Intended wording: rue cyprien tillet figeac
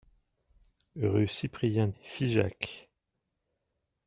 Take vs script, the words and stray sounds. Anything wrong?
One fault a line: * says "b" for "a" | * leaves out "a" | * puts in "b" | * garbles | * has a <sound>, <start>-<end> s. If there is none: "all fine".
* leaves out "tillet"